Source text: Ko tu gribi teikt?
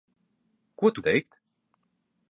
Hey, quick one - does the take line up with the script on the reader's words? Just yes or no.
no